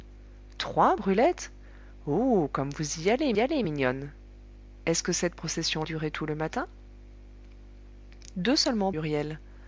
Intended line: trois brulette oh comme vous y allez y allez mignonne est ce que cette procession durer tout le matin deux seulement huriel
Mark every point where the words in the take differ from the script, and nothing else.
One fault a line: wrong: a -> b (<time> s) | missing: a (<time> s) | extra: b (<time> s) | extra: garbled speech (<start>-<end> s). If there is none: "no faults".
no faults